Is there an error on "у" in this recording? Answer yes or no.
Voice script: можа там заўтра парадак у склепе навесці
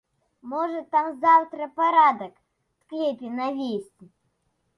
yes